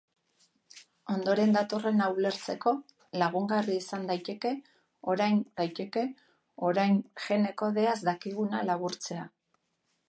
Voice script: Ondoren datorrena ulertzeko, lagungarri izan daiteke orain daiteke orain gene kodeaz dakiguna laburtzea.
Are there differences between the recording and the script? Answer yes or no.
no